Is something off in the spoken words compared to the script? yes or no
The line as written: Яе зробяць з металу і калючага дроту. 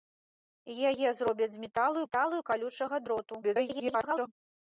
yes